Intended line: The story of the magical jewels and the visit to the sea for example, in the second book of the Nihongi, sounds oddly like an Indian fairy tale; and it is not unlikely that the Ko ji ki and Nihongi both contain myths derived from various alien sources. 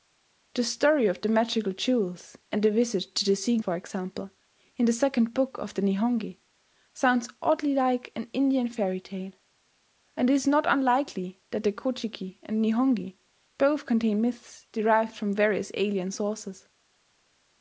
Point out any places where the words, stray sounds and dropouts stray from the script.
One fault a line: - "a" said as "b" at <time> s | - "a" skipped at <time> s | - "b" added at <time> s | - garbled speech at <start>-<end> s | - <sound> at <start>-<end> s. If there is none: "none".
none